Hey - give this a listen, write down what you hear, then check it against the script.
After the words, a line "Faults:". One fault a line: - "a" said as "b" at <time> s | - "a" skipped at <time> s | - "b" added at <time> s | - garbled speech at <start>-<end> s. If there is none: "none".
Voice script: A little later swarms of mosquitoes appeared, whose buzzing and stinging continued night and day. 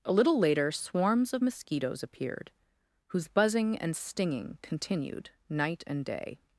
A little later swarms of mosquitoes appeared, whose buzzing and stinging continued night and day.
Faults:
none